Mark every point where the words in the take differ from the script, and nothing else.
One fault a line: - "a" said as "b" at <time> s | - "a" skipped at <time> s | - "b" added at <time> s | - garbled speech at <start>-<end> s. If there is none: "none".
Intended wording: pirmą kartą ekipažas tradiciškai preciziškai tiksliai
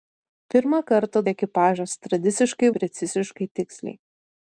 none